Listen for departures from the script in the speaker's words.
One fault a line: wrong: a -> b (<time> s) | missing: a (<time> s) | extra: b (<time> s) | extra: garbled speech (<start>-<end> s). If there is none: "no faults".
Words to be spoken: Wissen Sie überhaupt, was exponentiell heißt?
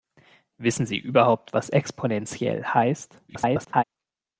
extra: garbled speech (3.3-3.8 s)